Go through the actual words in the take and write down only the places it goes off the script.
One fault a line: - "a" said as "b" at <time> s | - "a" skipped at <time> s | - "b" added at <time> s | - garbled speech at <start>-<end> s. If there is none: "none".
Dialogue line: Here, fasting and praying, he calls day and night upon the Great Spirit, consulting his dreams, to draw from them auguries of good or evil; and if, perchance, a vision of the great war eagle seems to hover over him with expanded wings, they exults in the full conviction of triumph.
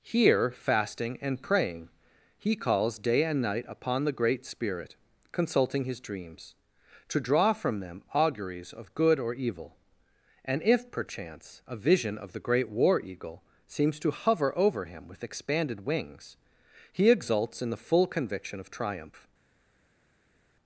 - "they" said as "he" at 16.9 s